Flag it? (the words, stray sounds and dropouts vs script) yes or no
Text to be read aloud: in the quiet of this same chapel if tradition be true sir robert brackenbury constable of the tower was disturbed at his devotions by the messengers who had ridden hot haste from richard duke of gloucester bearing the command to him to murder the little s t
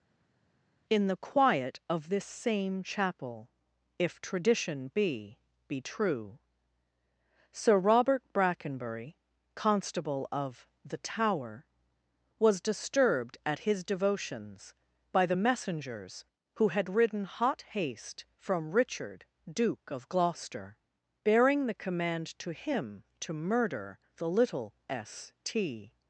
yes